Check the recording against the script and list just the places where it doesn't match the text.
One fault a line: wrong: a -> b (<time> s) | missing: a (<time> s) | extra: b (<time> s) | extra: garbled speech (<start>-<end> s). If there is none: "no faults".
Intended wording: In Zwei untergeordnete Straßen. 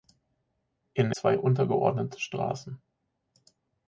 no faults